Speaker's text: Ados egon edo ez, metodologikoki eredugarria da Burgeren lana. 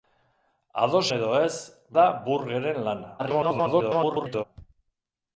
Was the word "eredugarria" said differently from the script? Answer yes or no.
yes